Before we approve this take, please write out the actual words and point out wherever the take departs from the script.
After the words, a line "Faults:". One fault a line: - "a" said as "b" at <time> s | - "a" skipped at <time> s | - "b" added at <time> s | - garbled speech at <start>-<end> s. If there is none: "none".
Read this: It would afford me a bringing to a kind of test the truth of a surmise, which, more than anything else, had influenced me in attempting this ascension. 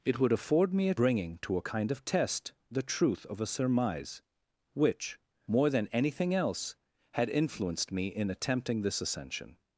It would afford me a bringing to a kind of test the truth of a surmise, which, more than anything else, had influenced me in attempting this ascension.
Faults:
none